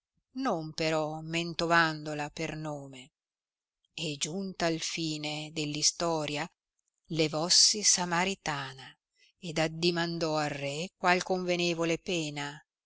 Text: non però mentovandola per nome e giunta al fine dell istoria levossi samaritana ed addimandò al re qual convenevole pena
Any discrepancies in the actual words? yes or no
no